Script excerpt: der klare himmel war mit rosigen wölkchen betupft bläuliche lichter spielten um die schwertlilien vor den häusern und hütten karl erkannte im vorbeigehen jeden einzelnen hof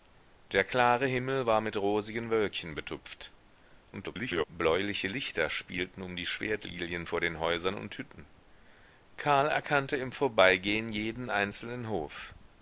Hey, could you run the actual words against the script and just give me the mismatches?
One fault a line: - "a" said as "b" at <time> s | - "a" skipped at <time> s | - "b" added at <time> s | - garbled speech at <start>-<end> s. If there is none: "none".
- garbled speech at 3.9-4.4 s